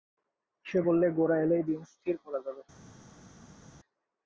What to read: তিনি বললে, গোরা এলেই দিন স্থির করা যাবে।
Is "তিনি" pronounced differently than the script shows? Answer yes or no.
yes